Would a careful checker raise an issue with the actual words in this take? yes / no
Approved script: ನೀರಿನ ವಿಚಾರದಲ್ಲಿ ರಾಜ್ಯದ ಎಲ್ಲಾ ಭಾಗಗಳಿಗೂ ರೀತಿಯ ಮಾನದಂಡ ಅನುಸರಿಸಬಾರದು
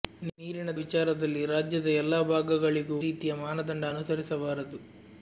no